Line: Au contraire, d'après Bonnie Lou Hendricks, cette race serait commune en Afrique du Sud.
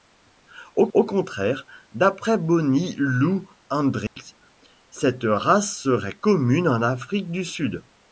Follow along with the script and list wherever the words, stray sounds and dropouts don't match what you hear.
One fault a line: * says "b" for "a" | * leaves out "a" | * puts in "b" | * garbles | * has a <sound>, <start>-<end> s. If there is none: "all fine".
* puts in "au"
* has a dropout, 4.1-4.2 s